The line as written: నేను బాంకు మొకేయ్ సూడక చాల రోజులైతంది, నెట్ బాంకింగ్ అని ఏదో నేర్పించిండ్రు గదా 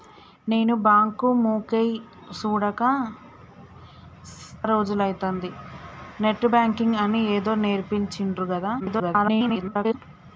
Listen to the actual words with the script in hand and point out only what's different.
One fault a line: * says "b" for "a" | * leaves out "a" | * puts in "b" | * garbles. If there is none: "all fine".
* leaves out "చాల"
* garbles